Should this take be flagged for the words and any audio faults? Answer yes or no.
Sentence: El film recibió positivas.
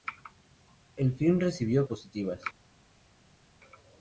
no